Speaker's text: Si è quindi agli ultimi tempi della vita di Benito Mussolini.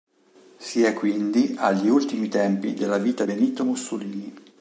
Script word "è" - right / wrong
right